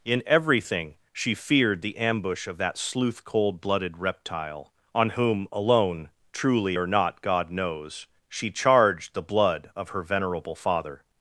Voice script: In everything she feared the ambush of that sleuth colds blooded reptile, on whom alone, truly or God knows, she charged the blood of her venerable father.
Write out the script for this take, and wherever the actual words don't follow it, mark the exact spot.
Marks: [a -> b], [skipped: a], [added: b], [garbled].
In everything she feared the ambush of that sleuth [colds -> cold] blooded reptile, on whom alone, truly or [added: not] God knows, she charged the blood of her venerable father.